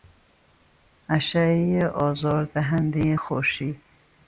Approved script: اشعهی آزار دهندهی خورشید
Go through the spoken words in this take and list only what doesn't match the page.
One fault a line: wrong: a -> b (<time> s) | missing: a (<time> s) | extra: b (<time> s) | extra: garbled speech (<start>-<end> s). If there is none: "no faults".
no faults